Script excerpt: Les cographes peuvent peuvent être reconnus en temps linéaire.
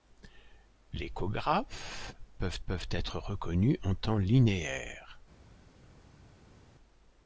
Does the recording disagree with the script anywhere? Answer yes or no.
no